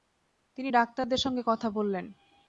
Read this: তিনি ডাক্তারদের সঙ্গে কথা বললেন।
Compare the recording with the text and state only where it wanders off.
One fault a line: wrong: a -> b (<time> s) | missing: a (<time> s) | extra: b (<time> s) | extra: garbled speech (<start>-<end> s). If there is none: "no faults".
no faults